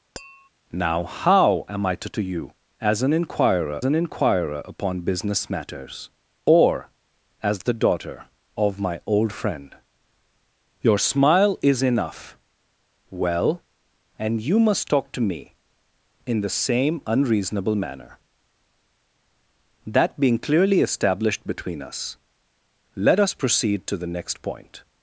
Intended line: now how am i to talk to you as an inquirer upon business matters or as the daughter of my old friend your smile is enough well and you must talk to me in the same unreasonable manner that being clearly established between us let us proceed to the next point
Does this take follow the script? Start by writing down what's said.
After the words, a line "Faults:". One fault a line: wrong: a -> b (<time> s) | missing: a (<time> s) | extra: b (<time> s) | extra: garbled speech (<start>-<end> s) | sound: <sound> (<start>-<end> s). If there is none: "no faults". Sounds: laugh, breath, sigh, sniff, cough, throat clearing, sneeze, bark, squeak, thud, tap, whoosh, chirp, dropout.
now how am i to to you as an inquirer an inquirer upon business matters or as the daughter of my old friend your smile is enough well and you must talk to me in the same unreasonable manner that being clearly established between us let us proceed to the next point
Faults:
sound: tap (0.2-0.5 s)
missing: talk (2.1 s)
extra: an inquirer (3.8 s)